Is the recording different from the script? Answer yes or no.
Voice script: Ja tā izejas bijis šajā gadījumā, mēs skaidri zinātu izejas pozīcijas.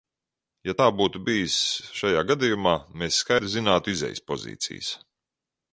yes